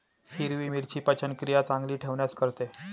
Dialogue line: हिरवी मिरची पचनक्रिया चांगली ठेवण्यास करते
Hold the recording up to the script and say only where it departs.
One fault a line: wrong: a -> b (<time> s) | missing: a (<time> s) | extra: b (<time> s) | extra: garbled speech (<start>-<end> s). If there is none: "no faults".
no faults